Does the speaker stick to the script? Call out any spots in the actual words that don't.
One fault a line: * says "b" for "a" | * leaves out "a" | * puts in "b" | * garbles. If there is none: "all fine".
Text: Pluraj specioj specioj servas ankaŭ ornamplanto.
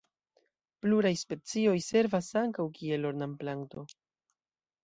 * leaves out "specioj"
* puts in "kiel"